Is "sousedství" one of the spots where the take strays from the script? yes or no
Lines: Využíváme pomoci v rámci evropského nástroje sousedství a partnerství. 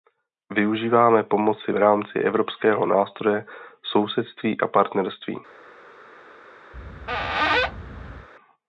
no